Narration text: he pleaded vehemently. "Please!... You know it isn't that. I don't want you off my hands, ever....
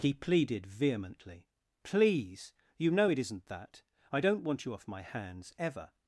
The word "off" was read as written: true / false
true